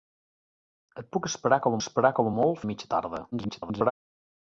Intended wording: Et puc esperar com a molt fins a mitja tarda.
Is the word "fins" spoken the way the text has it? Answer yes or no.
no